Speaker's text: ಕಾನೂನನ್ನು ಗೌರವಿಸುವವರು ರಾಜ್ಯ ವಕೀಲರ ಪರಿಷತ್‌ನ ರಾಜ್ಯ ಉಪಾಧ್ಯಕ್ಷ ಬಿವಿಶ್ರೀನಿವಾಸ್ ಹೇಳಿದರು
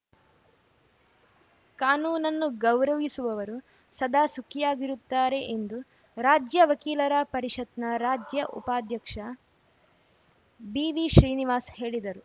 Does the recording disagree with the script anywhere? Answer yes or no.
yes